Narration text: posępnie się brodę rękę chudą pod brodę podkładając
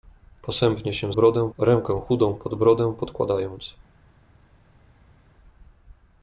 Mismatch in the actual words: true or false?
false